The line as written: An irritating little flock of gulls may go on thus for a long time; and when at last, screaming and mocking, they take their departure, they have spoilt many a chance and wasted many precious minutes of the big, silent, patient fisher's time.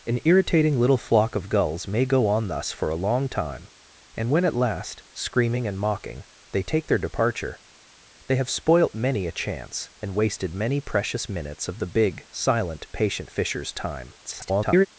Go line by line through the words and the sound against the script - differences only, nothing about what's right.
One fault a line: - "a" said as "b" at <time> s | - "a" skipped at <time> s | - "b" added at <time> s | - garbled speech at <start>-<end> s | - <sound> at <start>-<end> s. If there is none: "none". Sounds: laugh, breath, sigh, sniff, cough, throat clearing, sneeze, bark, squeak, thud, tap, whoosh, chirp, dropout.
- garbled speech at 14.2-14.9 s